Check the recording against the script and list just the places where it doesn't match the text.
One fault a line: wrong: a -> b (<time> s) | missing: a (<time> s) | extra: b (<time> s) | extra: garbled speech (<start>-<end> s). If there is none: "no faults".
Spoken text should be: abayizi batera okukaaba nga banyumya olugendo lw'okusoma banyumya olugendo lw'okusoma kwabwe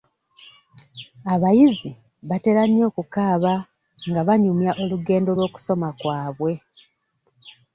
extra: nnyo (2.7 s)
missing: banyumya olugendo lw'okusoma (5.9 s)